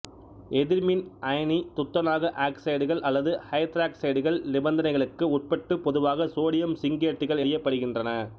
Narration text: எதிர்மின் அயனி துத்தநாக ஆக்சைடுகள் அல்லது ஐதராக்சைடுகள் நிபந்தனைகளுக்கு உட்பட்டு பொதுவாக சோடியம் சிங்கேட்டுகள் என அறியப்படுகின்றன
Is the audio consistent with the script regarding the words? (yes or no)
no